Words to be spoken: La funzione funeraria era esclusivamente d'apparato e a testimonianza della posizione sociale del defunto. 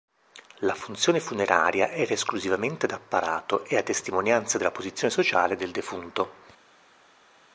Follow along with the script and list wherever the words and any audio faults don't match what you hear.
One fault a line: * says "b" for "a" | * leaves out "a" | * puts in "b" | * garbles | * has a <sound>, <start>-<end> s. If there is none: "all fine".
all fine